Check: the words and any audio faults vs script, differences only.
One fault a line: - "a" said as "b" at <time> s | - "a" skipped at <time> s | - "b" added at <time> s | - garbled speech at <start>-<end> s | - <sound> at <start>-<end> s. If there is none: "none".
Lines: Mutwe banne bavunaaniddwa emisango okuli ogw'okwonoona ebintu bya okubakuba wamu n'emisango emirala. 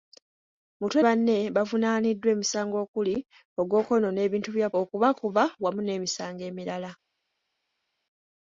none